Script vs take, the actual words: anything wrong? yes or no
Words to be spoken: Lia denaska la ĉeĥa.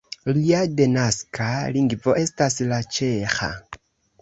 yes